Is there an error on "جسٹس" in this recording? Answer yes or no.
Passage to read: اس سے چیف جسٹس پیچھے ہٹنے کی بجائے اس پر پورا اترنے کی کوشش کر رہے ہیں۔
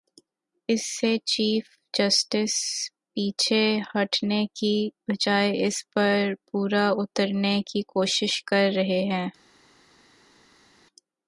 no